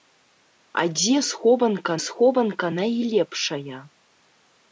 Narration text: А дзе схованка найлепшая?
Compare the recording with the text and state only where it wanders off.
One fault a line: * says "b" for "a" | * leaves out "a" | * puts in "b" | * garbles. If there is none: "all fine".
* puts in "схованка"